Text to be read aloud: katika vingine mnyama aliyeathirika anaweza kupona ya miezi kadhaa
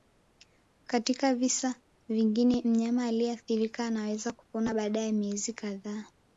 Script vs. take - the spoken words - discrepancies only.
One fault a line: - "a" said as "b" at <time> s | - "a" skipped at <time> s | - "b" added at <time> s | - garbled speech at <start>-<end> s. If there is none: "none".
- "visa" added at 1.4 s
- "baada" added at 4.7 s